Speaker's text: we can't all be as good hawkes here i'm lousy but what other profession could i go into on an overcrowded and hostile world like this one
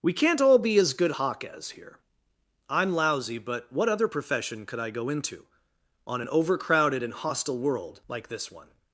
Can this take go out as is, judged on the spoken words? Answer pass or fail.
pass